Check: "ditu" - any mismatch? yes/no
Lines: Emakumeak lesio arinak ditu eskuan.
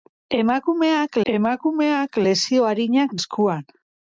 yes